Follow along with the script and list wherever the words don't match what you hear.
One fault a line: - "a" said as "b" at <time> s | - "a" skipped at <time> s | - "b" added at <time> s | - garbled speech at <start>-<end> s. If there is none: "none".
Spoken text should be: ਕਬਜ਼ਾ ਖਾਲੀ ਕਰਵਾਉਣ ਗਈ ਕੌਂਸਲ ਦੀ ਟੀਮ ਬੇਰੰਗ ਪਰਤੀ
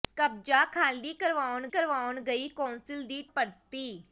- "ਕਰਵਾਉਣ" added at 1.7 s
- "ਟੀਮ ਬੇਰੰਗ" skipped at 3.2 s